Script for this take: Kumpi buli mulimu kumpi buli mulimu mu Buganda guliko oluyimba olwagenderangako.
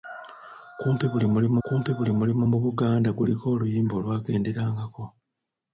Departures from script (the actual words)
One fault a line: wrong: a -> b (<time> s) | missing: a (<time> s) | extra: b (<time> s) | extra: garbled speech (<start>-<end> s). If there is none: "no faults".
no faults